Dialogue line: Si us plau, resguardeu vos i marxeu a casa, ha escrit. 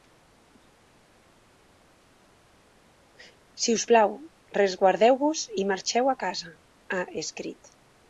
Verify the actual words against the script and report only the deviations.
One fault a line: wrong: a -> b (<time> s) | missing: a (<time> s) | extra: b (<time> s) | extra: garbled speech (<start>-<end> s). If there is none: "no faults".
no faults